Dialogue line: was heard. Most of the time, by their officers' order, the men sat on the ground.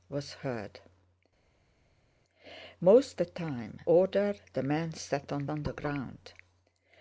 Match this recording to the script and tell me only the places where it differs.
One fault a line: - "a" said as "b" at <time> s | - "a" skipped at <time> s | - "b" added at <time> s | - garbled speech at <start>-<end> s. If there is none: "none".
- "of" skipped at 3.2 s
- "by their officers" skipped at 3.8 s
- "on" added at 5.5 s